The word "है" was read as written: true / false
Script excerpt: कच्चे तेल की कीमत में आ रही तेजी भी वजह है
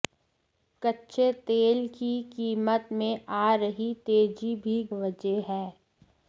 true